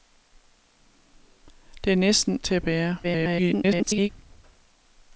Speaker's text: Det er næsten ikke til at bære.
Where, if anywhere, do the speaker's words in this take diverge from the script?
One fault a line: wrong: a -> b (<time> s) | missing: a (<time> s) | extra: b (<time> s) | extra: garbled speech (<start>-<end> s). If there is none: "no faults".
missing: ikke (2.4 s)
extra: garbled speech (3.0-4.1 s)